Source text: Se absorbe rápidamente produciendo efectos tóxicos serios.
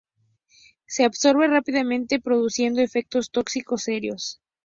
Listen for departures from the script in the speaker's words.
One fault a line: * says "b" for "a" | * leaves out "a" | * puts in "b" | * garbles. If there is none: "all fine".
all fine